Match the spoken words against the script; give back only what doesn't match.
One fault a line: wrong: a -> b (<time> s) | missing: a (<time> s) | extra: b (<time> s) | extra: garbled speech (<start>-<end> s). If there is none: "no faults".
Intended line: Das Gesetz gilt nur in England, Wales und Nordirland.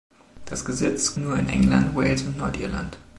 missing: gilt (1.1 s)